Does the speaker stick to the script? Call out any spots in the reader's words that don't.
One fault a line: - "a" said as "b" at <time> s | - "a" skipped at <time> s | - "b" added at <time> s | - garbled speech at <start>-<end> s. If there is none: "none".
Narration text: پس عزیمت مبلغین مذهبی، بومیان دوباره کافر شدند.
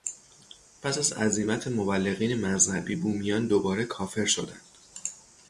- "از" added at 1.0 s